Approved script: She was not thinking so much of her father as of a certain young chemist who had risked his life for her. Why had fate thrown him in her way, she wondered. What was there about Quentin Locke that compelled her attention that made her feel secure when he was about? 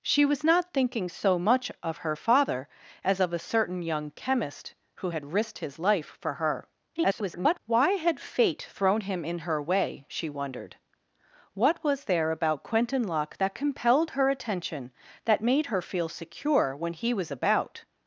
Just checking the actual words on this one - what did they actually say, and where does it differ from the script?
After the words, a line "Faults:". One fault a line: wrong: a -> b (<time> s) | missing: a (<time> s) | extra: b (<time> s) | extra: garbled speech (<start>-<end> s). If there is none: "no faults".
She was not thinking so much of her father as of a certain young chemist who had risked his life for her. [garbled] Why had fate thrown him in her way, she wondered. What was there about Quentin Locke that compelled her attention that made her feel secure when he was about?
Faults:
extra: garbled speech (7.0-7.6 s)